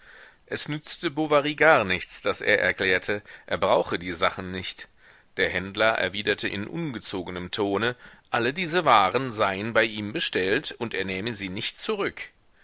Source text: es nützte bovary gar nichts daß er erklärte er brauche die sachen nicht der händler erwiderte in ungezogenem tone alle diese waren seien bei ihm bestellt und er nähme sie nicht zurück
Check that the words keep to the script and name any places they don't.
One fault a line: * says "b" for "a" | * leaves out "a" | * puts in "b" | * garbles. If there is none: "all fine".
all fine